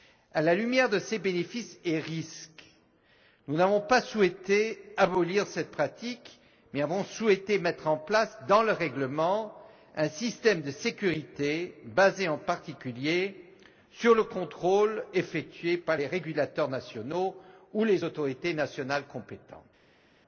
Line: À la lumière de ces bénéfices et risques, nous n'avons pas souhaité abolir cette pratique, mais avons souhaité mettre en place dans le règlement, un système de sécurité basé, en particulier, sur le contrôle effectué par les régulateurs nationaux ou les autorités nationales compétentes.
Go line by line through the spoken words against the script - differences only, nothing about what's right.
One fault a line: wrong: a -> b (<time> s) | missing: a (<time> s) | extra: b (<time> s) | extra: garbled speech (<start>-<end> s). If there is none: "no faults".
no faults